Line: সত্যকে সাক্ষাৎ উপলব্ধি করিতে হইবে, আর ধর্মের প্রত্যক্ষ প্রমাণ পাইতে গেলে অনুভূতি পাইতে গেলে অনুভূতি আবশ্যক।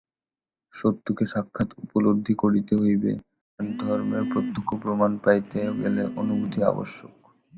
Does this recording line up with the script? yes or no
no